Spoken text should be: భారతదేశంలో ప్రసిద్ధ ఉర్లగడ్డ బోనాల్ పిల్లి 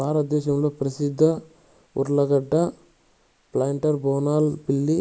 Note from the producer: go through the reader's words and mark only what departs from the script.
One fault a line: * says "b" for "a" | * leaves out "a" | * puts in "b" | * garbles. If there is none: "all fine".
* puts in "ప్లాంటర్"